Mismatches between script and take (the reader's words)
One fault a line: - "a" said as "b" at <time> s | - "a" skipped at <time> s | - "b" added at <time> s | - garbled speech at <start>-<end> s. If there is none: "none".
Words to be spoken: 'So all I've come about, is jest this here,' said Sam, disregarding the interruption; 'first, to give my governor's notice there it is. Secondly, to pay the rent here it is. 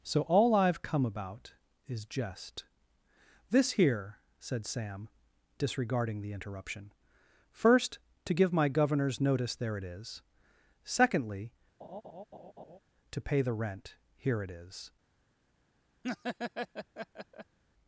none